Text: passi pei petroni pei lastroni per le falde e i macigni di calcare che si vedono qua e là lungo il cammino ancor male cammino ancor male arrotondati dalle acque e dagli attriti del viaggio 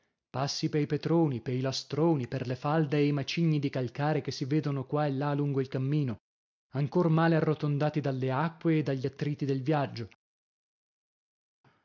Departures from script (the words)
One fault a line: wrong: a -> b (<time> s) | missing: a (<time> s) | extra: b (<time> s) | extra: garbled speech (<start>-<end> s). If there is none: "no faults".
missing: cammino ancor male (7.3 s)